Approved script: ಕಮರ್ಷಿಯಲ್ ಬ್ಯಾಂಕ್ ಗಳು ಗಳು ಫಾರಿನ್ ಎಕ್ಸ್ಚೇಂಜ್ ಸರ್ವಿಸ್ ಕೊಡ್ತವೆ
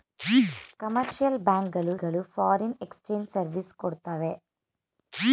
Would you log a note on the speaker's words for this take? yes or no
no